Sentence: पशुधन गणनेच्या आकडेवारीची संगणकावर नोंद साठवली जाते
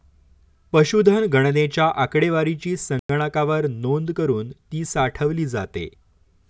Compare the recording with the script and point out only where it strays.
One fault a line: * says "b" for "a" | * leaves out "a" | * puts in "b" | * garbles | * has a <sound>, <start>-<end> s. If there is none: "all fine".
* has a dropout, 3.0-3.1 s
* puts in "करुन ती"